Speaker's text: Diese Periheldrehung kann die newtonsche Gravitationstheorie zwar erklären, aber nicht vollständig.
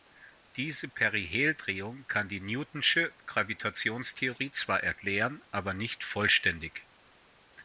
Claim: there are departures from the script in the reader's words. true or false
false